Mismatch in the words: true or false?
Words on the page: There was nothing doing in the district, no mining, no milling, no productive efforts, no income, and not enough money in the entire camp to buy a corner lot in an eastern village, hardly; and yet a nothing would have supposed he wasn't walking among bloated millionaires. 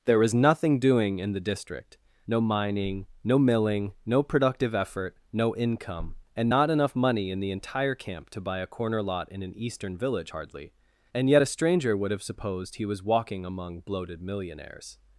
true